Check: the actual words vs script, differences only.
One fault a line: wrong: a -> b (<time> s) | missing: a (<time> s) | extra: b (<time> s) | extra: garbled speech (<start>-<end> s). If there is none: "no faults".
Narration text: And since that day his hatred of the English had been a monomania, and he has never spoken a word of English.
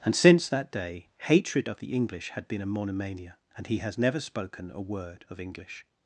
missing: his (1.1 s)